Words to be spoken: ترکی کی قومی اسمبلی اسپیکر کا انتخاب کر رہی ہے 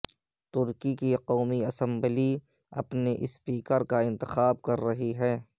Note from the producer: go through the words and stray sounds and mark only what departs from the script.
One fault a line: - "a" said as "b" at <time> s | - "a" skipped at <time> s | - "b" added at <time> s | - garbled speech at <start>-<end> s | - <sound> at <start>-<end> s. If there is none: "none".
- "اپنے" added at 2.7 s